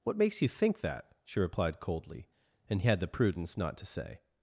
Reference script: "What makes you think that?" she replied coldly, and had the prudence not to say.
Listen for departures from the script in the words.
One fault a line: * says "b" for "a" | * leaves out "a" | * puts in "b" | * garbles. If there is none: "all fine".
all fine